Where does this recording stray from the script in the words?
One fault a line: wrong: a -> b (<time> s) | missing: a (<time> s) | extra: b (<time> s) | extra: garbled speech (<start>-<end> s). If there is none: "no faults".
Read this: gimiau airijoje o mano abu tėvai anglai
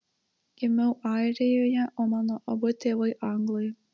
no faults